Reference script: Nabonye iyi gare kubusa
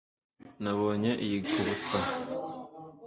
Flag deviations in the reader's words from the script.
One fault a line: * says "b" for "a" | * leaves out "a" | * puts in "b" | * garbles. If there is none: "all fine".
* leaves out "gare"